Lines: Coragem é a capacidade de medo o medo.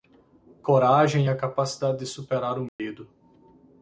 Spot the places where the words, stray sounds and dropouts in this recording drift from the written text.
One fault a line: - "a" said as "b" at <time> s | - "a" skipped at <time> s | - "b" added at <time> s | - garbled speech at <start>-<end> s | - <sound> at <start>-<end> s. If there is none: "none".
- "medo" said as "superar" at 2.1 s
- dropout at 2.7-2.8 s